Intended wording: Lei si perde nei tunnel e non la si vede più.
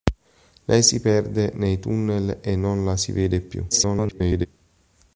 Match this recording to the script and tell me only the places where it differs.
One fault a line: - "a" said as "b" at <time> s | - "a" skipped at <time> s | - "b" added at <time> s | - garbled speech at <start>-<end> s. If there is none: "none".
- garbled speech at 3.7-4.5 s